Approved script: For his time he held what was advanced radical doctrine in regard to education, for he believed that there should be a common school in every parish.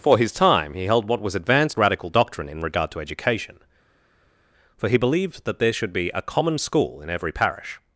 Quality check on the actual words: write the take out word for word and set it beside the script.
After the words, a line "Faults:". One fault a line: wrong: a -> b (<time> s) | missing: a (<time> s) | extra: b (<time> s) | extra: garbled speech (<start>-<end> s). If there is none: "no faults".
For his time he held what was advanced radical doctrine in regard to education, for he believed that there should be a common school in every parish.
Faults:
no faults